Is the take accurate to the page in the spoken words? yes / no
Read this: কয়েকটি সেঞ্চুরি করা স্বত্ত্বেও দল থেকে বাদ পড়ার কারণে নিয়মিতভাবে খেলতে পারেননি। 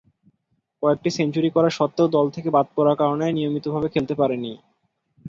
yes